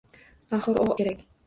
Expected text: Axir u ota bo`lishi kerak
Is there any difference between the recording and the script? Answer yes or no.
yes